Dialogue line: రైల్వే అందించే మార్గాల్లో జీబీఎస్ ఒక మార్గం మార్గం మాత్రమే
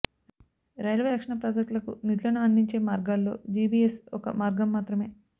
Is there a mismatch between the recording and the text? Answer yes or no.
yes